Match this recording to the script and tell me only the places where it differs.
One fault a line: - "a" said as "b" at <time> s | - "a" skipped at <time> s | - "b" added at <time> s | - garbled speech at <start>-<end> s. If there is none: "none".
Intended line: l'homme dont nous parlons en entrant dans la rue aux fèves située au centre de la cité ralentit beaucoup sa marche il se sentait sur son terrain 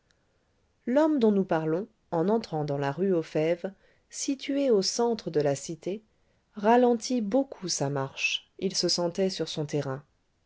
none